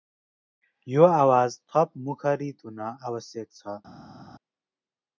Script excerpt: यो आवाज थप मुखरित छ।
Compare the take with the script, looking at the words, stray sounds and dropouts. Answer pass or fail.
fail